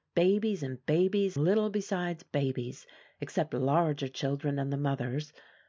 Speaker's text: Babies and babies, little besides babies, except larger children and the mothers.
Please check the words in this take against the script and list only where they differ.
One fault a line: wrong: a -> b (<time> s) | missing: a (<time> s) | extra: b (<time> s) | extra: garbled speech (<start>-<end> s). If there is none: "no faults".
no faults